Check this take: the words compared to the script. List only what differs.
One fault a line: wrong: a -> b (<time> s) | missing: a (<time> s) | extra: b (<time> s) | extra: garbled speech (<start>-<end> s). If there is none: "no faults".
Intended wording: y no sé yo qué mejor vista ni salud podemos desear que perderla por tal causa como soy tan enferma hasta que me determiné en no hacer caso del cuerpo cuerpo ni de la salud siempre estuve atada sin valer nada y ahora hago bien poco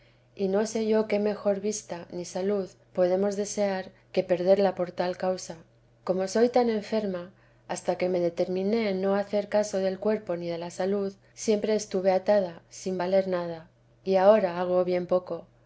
missing: cuerpo (10.3 s)